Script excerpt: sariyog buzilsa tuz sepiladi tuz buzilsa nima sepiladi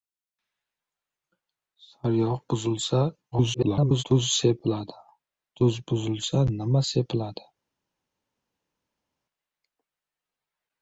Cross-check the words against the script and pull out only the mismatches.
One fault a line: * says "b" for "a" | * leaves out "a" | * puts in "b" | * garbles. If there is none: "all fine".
* garbles